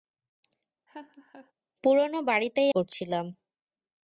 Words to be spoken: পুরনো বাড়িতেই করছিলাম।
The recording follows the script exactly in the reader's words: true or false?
true